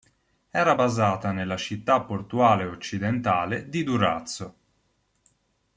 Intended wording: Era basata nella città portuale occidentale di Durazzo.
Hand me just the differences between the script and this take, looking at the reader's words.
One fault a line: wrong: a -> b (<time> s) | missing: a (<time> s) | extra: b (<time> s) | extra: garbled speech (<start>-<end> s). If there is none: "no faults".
no faults